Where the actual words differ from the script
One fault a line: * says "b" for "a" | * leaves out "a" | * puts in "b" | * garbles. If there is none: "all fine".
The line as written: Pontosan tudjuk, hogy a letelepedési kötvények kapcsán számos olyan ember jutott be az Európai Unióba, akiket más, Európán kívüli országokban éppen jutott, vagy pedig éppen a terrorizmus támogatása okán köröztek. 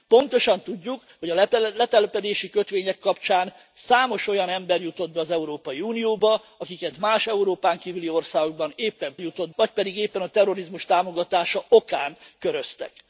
all fine